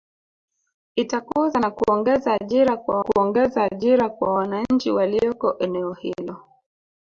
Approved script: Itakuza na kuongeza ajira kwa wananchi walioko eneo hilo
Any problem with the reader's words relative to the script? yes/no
yes